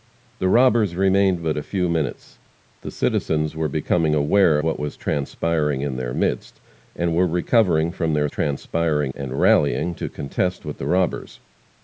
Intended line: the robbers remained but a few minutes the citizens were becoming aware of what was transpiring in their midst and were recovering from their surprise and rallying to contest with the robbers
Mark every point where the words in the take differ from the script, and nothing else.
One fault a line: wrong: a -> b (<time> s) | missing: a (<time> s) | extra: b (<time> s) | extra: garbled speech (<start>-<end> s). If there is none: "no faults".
missing: of (4.6 s)
wrong: surprise -> transpiring (8.3 s)